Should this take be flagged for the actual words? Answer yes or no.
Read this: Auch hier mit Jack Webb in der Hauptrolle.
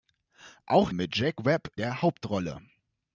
yes